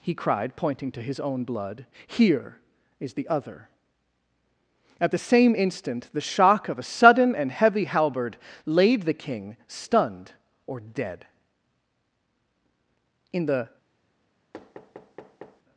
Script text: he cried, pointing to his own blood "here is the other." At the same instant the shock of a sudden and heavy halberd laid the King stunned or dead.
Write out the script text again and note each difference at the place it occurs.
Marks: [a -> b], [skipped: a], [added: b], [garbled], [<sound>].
he cried, pointing to his own blood "here is the other." At the same instant the shock of a sudden and heavy halberd laid the King stunned or dead. [added: In the] [thud]